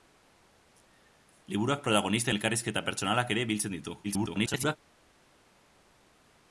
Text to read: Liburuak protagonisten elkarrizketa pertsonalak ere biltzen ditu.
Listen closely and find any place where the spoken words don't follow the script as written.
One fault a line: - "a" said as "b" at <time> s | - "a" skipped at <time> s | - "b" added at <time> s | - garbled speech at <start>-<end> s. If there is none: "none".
- garbled speech at 4.0-4.8 s